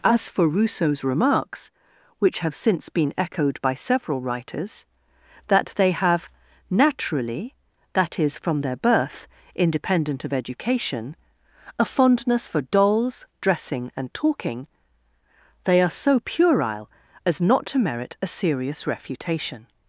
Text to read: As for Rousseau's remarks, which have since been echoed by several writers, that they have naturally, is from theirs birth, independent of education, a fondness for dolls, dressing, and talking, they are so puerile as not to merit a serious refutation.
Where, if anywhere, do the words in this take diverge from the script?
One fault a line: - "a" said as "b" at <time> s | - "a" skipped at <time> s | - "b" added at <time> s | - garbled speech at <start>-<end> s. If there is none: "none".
- "that" added at 7.9 s
- "theirs" said as "their" at 8.6 s